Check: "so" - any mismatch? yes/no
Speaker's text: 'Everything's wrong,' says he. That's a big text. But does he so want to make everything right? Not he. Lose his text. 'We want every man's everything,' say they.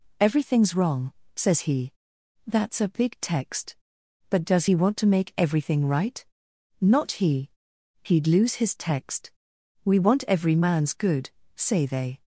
yes